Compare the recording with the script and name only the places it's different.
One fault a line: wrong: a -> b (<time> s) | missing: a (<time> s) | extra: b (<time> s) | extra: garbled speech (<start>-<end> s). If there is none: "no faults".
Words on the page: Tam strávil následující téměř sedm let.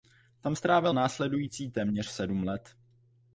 no faults